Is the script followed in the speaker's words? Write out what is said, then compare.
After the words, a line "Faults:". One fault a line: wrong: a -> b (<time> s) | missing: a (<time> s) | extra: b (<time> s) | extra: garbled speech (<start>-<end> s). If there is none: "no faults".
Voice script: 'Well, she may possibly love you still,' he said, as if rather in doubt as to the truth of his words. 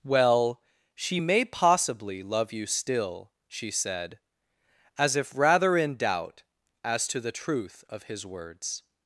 'Well, she may possibly love you still,' she said, as if rather in doubt as to the truth of his words.
Faults:
wrong: he -> she (3.5 s)